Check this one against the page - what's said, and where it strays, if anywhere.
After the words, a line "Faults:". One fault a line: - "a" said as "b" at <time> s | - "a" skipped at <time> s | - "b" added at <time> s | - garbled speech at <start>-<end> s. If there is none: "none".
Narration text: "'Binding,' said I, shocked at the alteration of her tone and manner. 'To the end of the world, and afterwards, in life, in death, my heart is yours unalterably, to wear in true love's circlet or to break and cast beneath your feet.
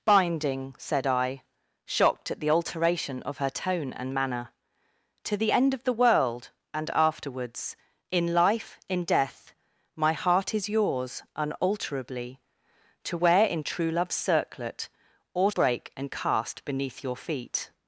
"'Binding,' said I, shocked at the alteration of her tone and manner. 'To the end of the world, and afterwards, in life, in death, my heart is yours unalterably, to wear in true love's circlet or break and cast beneath your feet.
Faults:
- "to" skipped at 15.5 s